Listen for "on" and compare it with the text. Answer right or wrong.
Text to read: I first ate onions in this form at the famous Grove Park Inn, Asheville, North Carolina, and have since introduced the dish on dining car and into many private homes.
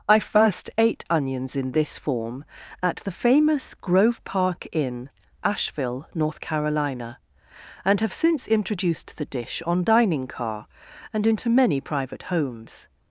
right